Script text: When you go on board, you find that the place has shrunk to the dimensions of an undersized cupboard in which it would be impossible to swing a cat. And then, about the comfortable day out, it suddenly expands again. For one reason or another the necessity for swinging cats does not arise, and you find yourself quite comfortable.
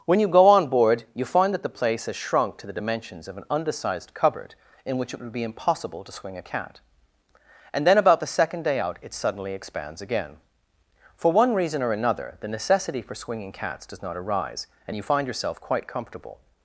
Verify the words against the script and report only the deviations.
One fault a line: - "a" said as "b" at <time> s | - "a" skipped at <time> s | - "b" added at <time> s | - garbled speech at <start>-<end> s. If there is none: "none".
- "comfortable" said as "second" at 8.3 s